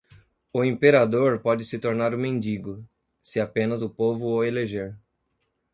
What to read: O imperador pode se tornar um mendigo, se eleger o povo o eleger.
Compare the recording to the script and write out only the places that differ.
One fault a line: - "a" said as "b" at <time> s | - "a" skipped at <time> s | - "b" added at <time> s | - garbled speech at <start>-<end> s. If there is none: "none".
- "eleger" said as "apenas" at 3.4 s